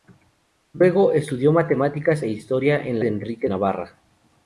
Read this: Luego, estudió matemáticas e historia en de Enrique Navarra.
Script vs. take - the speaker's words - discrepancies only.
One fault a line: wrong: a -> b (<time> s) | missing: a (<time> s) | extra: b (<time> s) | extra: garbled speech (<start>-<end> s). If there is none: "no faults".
no faults